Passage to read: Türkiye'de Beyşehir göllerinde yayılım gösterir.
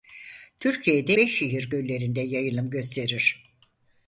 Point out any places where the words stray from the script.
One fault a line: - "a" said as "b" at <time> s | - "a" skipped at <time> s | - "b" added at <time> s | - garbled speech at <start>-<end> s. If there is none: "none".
none